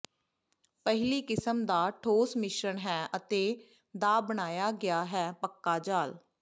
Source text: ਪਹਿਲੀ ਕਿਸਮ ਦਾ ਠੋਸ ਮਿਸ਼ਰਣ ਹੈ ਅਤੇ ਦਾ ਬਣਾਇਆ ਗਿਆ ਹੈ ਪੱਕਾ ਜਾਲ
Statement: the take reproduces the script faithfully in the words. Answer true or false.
true